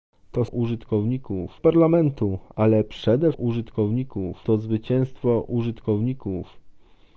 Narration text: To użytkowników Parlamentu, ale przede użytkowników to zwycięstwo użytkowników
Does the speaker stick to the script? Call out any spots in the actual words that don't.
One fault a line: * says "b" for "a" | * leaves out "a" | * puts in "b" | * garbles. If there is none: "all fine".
all fine